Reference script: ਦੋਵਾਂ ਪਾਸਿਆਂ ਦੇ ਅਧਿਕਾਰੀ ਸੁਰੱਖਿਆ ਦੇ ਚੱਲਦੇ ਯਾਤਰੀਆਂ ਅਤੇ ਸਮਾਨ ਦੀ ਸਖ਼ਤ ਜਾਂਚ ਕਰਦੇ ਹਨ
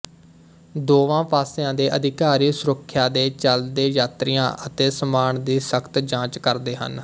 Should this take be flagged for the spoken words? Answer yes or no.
no